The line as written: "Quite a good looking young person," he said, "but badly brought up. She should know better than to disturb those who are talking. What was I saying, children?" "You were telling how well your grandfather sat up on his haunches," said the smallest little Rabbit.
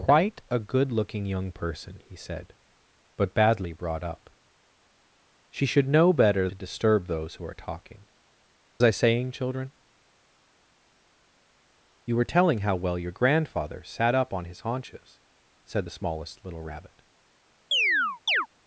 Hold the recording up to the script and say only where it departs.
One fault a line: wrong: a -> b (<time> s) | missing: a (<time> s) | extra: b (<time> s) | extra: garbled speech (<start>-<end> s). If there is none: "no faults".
missing: than (6.5 s)
missing: What was (8.1 s)